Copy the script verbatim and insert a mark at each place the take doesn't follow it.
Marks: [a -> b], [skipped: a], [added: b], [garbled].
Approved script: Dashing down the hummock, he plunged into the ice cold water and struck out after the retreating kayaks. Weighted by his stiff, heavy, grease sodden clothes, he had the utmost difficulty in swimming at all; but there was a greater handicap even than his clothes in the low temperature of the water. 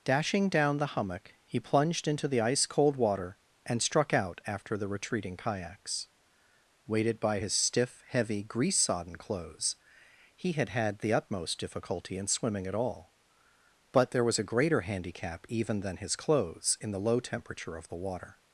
Dashing down the hummock, he plunged into the ice cold water and struck out after the retreating kayaks. Weighted by his stiff, heavy, grease sodden clothes, he had [added: had] the utmost difficulty in swimming at all; but there was a greater handicap even than his clothes in the low temperature of the water.